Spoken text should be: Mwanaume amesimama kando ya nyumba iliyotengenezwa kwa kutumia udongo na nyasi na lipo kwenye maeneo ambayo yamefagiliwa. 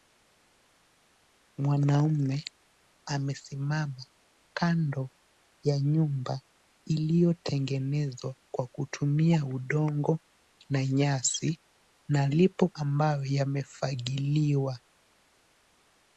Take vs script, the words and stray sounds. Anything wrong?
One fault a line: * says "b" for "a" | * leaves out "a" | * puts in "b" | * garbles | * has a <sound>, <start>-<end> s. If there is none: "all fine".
* leaves out "kwenye maeneo"